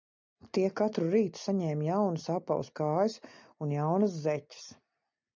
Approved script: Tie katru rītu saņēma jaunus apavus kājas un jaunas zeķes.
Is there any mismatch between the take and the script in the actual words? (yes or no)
no